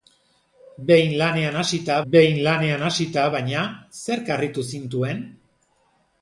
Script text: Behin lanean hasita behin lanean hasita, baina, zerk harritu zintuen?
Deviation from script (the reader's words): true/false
false